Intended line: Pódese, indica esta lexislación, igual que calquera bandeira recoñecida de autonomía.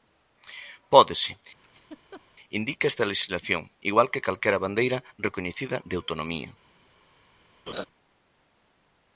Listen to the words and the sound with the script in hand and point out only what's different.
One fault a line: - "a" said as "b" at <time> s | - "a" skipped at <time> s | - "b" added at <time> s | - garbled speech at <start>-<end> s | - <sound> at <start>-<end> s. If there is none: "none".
- laugh at 1.6-2.2 s
- laugh at 7.7-7.9 s